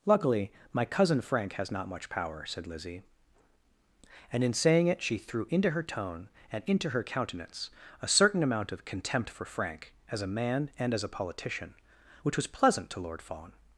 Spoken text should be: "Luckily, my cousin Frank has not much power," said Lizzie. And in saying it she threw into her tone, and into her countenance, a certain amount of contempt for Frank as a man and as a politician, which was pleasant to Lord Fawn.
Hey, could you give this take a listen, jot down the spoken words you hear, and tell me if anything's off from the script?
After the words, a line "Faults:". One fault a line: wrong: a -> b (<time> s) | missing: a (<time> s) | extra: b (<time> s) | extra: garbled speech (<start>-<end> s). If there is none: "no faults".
"Luckily, my cousin Frank has not much power," said Lizzie. And in saying it she threw into her tone, and into her countenance, a certain amount of contempt for Frank as a man and as a politician, which was pleasant to Lord Fawn.
Faults:
no faults